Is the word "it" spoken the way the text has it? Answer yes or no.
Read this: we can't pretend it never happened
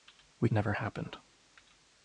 no